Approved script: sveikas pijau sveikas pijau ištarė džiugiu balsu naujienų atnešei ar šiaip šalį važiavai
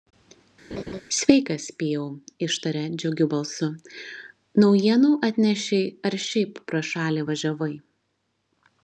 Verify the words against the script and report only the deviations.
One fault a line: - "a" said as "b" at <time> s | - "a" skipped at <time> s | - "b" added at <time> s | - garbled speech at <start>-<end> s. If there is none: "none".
- "sveikas pijau" skipped at 2.0 s
- "pro" added at 6.7 s